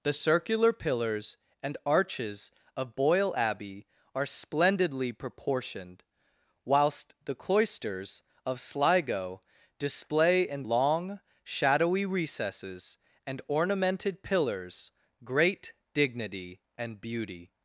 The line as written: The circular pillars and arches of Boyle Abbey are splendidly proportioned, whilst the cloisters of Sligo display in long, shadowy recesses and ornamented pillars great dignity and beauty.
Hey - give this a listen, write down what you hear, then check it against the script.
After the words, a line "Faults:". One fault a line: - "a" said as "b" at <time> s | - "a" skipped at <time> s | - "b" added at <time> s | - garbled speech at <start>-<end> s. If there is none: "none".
The circular pillars and arches of Boyle Abbey are splendidly proportioned, whilst the cloisters of Sligo display in long, shadowy recesses and ornamented pillars great dignity and beauty.
Faults:
none